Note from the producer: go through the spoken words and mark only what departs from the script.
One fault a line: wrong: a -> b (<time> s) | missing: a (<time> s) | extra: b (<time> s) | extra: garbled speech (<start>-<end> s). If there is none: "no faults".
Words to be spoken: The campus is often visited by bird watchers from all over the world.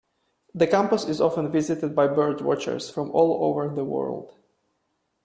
no faults